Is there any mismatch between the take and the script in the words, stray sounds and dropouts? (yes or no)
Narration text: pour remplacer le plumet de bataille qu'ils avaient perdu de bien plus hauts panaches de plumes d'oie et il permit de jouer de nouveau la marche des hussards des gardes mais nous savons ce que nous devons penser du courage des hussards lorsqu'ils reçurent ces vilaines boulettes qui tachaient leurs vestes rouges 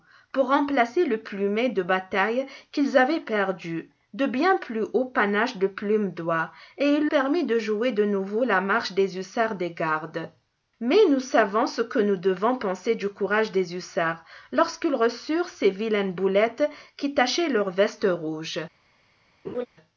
yes